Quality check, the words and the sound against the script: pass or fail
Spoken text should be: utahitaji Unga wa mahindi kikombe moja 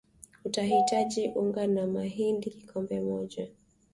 pass